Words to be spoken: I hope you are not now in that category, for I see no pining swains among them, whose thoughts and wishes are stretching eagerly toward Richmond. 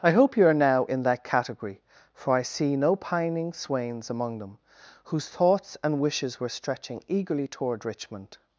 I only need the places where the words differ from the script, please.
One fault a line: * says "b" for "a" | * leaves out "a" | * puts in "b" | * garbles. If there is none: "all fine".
* leaves out "not"
* says "were" for "are"